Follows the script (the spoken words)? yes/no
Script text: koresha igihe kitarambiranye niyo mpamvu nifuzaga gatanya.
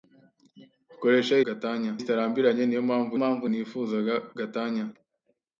no